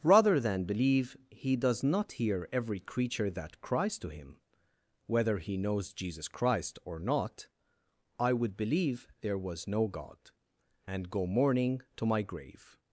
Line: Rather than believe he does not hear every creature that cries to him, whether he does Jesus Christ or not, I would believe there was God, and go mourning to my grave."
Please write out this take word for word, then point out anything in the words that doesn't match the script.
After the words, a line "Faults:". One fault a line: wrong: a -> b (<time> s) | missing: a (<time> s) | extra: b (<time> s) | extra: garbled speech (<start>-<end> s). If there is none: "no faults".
Rather than believe he does not hear every creature that cries to him, whether he knows Jesus Christ or not, I would believe there was no God, and go mourning to my grave."
Faults:
wrong: does -> knows (5.6 s)
extra: no (9.7 s)